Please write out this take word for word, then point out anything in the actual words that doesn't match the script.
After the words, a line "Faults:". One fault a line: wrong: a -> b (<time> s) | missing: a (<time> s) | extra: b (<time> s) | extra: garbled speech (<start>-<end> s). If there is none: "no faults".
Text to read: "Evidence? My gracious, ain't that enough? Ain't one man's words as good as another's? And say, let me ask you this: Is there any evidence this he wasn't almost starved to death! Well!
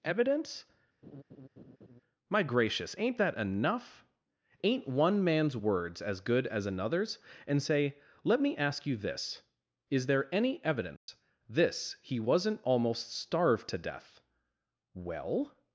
"Evidence? My gracious, ain't that enough? Ain't one man's words as good as another's? And say, let me ask you this: Is there any evidence this he wasn't almost starved to death! Well!
Faults:
no faults